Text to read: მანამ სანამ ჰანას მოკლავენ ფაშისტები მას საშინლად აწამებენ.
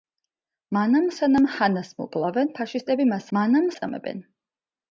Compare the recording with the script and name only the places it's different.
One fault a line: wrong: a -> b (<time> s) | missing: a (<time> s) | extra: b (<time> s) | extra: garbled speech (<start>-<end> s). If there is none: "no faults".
wrong: საშინლად -> მანამ (3.4 s)